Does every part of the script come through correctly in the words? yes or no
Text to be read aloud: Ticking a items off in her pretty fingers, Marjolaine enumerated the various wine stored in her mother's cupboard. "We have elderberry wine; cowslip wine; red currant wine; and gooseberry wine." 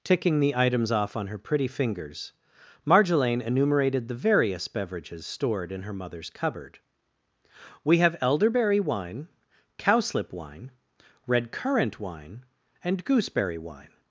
no